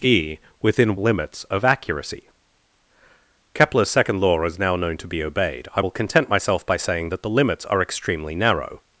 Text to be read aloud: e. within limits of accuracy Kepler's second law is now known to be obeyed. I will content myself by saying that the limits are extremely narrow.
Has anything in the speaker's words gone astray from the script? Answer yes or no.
no